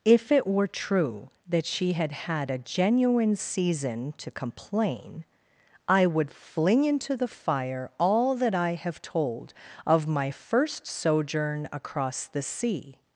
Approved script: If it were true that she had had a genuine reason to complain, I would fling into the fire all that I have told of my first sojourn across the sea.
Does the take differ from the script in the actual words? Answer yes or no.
yes